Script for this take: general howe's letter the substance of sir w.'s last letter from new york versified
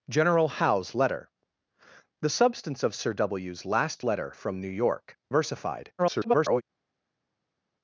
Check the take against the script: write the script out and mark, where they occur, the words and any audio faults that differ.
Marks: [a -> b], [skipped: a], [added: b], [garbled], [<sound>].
general howe's letter the substance of sir w.'s last letter from new york versified [garbled]